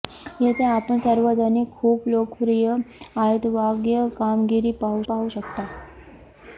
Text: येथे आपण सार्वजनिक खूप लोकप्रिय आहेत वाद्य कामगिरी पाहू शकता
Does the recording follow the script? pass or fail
fail